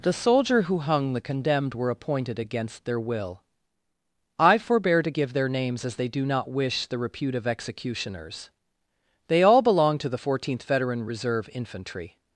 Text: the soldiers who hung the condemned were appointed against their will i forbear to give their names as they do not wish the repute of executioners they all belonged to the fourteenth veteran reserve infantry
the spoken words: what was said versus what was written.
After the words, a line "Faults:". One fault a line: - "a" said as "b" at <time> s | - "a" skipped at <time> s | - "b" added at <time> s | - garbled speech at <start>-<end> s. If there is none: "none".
the soldier who hung the condemned were appointed against their will i forbear to give their names as they do not wish the repute of executioners they all belonged to the fourteenth veteran reserve infantry
Faults:
- "soldiers" said as "soldier" at 0.1 s